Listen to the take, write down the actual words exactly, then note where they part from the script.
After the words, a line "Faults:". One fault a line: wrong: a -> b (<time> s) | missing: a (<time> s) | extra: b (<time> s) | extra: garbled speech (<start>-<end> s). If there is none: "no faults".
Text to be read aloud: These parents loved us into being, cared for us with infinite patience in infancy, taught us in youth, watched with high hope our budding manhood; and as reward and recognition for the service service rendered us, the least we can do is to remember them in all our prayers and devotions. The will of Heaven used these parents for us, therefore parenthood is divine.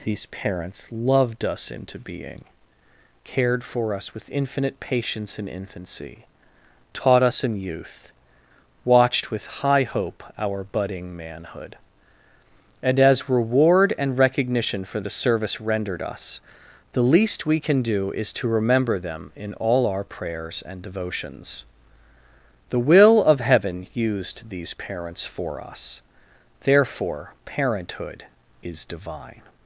These parents loved us into being, cared for us with infinite patience in infancy, taught us in youth, watched with high hope our budding manhood; and as reward and recognition for the service rendered us, the least we can do is to remember them in all our prayers and devotions. The will of Heaven used these parents for us, therefore parenthood is divine.
Faults:
missing: service (15.6 s)